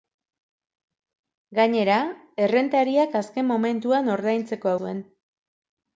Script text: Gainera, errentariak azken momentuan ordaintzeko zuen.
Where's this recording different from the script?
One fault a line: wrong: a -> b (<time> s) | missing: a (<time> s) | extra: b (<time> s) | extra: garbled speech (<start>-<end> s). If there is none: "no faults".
no faults